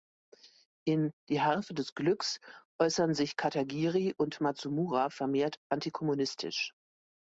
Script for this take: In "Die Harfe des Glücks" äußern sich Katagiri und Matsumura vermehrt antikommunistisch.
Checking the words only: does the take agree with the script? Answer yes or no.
yes